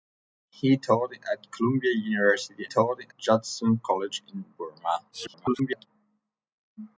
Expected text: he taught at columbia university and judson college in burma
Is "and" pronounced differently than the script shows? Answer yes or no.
yes